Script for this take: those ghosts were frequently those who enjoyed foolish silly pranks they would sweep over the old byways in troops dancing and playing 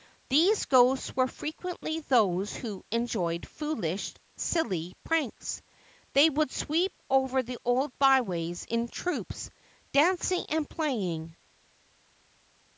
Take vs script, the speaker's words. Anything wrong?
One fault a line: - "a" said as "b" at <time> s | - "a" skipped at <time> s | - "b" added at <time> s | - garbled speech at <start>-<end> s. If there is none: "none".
- "those" said as "these" at 0.3 s